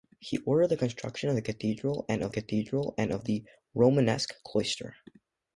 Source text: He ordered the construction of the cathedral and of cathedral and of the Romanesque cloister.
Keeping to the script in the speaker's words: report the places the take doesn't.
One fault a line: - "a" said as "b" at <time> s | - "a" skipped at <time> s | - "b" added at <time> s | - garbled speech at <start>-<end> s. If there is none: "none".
none